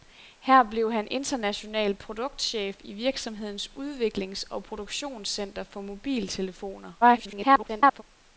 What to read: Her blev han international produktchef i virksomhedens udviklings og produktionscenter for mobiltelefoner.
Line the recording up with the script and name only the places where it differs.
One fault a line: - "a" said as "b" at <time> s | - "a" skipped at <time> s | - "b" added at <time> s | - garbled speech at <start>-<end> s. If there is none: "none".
- garbled speech at 7.0-8.0 s